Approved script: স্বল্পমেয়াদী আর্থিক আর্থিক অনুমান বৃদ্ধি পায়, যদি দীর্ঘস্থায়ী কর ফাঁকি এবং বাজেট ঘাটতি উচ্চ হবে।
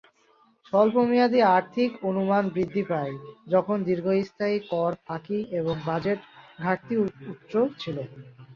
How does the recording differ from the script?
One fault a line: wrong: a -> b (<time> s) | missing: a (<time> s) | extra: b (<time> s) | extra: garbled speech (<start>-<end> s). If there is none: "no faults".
missing: আর্থিক (1.9 s)
wrong: যদি -> যখন (3.5 s)
wrong: হবে -> ছিল (7.8 s)